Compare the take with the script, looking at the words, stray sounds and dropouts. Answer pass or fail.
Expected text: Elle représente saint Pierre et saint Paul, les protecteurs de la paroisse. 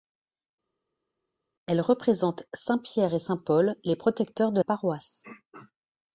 fail